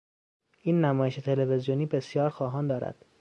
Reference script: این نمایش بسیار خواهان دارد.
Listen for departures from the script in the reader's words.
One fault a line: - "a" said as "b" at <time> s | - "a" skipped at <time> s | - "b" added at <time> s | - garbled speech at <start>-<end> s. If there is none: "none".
- "تلویزیونی" added at 1.1 s